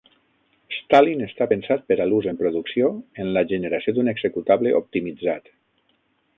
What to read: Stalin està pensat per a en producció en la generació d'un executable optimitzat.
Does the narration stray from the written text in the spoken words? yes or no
yes